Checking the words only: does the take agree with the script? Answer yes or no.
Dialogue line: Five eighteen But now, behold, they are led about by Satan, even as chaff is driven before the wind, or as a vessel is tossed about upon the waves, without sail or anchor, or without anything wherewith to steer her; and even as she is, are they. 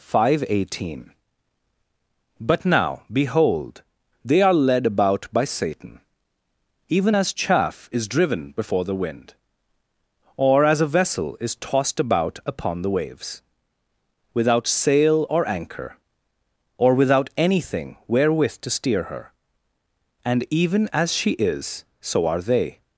no